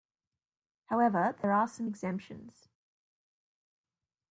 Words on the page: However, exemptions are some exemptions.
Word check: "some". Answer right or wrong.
right